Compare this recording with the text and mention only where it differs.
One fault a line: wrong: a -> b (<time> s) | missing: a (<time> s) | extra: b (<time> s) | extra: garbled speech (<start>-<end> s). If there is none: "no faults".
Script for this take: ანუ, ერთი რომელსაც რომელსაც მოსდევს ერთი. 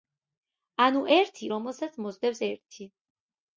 missing: რომელსაც (2.0 s)